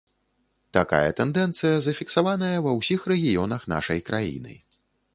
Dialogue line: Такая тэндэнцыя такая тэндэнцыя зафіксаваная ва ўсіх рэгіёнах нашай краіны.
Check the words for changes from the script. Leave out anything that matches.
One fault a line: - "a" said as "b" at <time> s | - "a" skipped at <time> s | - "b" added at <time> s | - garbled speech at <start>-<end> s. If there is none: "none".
- "такая тэндэнцыя" skipped at 1.8 s